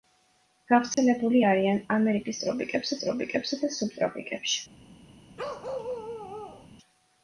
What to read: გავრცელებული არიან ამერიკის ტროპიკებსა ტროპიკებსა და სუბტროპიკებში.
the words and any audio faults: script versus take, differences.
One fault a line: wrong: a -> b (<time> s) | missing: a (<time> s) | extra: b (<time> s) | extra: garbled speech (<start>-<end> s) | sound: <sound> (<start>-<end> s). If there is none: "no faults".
sound: dropout (0.9-1.0 s)
sound: bark (5.4-6.7 s)